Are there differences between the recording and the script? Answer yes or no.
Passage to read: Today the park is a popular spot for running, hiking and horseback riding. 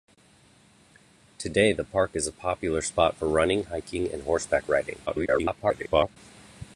yes